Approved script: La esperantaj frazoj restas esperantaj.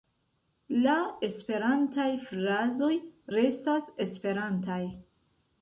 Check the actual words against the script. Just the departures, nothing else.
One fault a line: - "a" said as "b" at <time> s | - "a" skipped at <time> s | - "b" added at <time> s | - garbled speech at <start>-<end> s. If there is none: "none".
none